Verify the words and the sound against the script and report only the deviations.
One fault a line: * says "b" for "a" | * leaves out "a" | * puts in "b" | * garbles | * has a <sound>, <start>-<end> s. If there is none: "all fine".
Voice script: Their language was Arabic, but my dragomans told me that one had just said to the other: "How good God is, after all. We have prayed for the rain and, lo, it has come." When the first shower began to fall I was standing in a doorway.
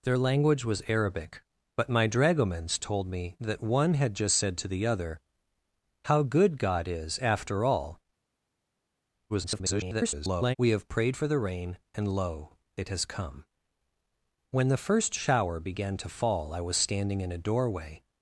* garbles